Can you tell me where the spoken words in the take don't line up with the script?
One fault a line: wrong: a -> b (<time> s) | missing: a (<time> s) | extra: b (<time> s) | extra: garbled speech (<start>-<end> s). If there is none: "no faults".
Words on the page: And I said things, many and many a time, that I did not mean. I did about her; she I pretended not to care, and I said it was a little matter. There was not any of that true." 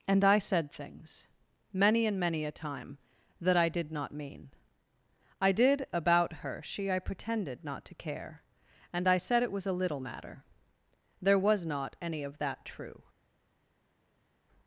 no faults